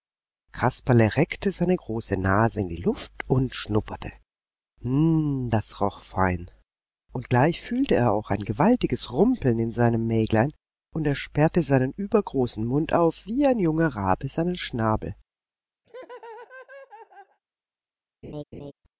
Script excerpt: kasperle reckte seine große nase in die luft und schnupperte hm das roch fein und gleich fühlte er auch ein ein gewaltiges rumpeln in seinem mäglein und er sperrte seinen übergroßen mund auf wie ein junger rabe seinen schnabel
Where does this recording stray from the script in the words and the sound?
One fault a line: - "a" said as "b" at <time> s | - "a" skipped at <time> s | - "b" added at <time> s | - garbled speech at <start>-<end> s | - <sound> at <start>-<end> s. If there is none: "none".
- "ein" skipped at 8.4 s
- laugh at 15.8-17.4 s
- laugh at 18.2-18.7 s